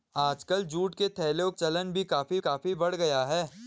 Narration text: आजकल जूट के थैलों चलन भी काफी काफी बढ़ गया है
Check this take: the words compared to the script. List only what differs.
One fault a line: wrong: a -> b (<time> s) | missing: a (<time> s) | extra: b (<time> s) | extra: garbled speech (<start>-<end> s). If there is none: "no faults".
no faults